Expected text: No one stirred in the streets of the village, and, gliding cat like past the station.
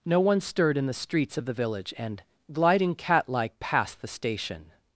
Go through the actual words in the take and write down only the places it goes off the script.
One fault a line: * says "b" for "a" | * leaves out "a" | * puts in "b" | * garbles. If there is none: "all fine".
all fine